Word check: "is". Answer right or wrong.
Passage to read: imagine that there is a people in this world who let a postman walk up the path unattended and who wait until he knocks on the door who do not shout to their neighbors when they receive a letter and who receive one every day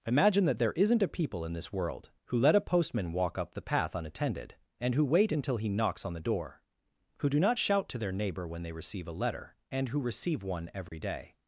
wrong